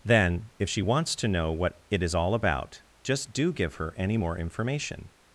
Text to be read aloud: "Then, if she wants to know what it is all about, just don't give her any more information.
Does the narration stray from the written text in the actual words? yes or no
yes